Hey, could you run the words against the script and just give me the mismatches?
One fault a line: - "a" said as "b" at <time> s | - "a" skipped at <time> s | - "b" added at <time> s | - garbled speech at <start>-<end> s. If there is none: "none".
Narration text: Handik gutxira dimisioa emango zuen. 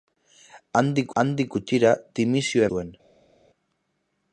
- "handik" added at 1.2 s
- "emango" skipped at 2.7 s